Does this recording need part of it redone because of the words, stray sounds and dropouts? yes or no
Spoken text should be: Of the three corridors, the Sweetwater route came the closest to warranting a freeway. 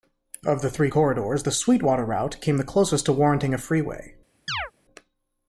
yes